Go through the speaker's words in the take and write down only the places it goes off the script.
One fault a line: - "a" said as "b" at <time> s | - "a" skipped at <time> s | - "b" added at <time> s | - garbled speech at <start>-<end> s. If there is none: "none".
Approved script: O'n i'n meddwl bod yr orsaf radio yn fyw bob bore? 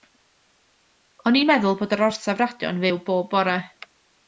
none